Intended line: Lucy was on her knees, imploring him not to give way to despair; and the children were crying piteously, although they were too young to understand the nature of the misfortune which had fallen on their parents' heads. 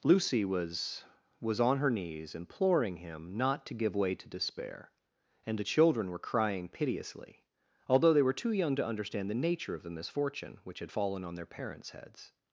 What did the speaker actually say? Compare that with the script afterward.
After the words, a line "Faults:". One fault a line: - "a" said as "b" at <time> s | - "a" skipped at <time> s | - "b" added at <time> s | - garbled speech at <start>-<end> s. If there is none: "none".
Lucy was was on her knees, imploring him not to give way to despair; and the children were crying piteously, although they were too young to understand the nature of the misfortune which had fallen on their parents' heads.
Faults:
- "was" added at 1.4 s